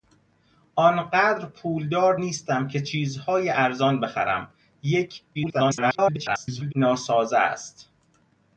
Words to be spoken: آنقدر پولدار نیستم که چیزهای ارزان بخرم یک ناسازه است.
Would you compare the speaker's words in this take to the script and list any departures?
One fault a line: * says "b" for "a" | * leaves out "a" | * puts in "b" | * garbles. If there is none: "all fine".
* garbles